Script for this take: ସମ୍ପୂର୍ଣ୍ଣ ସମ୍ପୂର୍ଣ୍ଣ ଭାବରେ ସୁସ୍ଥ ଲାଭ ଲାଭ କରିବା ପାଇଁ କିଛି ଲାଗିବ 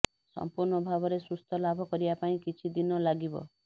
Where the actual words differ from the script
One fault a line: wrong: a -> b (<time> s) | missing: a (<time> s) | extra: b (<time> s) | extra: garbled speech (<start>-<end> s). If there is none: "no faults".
missing: ସମ୍ପୂର୍ଣ୍ଣ (0.8 s)
missing: ଲାଭ (1.9 s)
extra: ଦିନ (2.8 s)